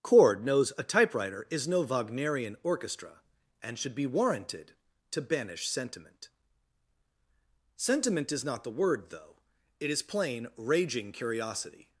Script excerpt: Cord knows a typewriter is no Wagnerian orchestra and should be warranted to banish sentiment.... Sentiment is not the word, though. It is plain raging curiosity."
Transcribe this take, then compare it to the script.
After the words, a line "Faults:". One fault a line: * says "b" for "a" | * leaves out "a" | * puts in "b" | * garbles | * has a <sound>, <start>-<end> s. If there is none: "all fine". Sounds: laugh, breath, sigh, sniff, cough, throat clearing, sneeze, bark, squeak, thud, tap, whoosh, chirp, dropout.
Cord knows a typewriter is no Wagnerian orchestra and should be warranted to banish sentiment.... Sentiment is not the word, though. It is plain raging curiosity."
Faults:
all fine